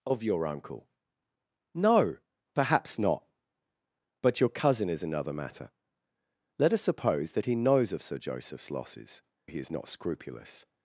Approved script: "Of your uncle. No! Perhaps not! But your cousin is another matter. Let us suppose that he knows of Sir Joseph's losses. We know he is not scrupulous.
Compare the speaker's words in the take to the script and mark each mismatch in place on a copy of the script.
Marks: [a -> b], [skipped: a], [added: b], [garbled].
"Of your uncle. No! Perhaps not! But your cousin is another matter. Let us suppose that he knows of Sir Joseph's losses. [skipped: We know] he is not scrupulous.